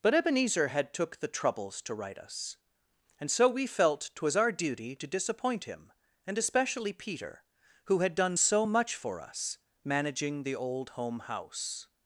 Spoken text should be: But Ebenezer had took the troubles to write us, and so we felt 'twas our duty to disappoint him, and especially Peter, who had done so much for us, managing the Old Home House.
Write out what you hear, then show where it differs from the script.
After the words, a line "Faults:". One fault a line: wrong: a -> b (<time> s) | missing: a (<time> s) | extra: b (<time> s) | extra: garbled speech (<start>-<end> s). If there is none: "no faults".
But Ebenezer had took the troubles to write us, and so we felt 'twas our duty to disappoint him, and especially Peter, who had done so much for us, managing the Old Home House.
Faults:
no faults